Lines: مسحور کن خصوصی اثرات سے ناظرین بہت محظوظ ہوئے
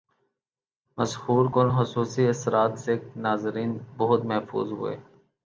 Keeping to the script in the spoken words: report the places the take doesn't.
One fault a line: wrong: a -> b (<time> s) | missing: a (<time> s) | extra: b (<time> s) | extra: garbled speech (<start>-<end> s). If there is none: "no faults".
no faults